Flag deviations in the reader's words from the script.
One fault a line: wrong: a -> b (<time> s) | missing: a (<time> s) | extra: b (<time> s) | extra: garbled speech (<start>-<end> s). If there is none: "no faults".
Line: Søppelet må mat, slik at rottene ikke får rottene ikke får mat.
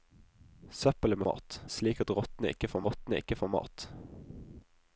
no faults